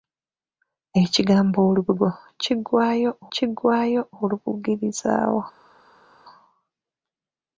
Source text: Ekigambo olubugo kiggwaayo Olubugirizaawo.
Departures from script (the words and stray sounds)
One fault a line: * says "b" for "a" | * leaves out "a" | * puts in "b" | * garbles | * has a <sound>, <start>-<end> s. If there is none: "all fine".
* puts in "kiggwaayo"